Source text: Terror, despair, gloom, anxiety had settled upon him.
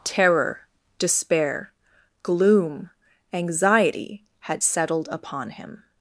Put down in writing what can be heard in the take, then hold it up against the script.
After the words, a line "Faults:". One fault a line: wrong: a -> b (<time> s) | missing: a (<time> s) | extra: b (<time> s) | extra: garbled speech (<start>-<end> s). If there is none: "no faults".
Terror, despair, gloom, anxiety had settled upon him.
Faults:
no faults